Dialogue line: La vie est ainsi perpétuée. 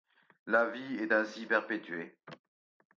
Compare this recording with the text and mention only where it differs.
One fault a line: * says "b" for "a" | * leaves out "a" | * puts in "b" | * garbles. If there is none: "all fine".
all fine